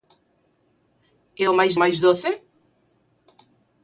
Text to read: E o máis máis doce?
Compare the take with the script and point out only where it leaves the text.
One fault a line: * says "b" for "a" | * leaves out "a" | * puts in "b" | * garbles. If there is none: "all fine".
all fine